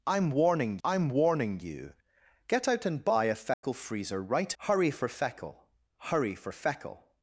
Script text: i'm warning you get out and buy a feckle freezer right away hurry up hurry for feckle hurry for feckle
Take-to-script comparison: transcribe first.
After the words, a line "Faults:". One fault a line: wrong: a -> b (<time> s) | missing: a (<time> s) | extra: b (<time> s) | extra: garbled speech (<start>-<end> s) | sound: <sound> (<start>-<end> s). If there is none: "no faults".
i'm warning i'm warning you get out and buy a feckle freezer right hurry for feckle hurry for feckle
Faults:
extra: i'm warning (0.8 s)
sound: dropout (3.5-3.6 s)
missing: away hurry up (4.6 s)